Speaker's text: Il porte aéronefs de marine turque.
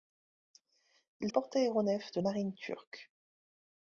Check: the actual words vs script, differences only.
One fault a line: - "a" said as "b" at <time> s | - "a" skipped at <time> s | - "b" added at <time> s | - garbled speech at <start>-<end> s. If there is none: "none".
none